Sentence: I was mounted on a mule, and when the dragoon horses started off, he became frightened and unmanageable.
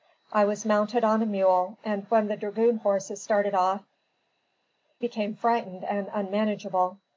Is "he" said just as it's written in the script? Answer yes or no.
no